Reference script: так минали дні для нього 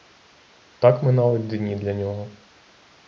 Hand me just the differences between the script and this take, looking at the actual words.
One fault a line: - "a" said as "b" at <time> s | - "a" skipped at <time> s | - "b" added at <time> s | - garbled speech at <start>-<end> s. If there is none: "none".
none